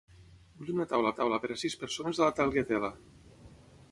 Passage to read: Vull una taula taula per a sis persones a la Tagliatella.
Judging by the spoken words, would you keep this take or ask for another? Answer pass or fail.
pass